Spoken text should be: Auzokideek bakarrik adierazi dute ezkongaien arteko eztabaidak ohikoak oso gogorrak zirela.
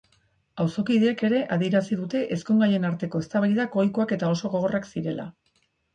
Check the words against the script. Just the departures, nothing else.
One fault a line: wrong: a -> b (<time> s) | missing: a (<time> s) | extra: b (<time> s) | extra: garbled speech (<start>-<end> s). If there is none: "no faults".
wrong: bakarrik -> ere (1.3 s)
extra: eta (4.2 s)